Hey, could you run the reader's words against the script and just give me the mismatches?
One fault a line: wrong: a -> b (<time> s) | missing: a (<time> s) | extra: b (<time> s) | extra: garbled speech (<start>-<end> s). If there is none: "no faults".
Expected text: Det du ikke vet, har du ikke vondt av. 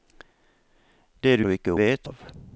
missing: ikke vet har (1.4 s)
wrong: vondt -> vet (1.8 s)